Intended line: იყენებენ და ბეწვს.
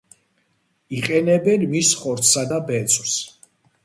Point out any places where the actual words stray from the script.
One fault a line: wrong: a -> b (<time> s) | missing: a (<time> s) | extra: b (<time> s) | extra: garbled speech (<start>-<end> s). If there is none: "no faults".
extra: მის ხორცსა (1.7 s)